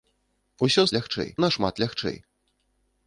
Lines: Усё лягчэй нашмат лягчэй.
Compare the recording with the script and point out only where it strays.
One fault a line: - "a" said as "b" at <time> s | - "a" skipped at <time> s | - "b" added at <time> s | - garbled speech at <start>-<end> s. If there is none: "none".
none